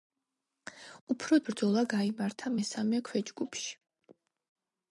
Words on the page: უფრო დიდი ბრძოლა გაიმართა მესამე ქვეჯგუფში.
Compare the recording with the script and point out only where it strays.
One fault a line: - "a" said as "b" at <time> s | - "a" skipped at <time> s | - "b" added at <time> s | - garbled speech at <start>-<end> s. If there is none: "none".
- "დიდი" skipped at 1.4 s